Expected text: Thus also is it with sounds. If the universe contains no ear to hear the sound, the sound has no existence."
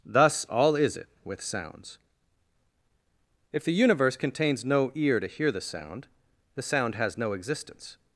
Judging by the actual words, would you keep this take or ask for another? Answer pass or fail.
fail